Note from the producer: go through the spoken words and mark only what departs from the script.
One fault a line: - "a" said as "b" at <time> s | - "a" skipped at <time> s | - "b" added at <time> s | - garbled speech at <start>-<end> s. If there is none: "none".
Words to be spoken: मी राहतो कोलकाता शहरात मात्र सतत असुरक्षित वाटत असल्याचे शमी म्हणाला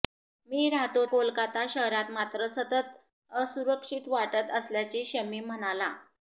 none